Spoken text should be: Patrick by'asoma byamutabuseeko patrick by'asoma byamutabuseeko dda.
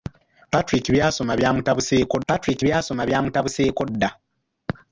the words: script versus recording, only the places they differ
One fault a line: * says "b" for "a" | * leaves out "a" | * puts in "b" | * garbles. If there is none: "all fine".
all fine